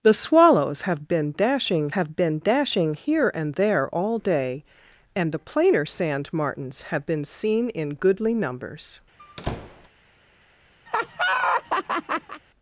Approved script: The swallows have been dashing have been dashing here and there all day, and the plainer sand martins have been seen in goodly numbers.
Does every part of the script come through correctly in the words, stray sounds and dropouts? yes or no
no